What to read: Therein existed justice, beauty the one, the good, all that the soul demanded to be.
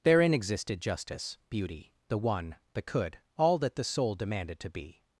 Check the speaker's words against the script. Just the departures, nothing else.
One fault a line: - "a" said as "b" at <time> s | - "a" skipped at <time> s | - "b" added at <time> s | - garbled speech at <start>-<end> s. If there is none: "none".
- "good" said as "could" at 2.8 s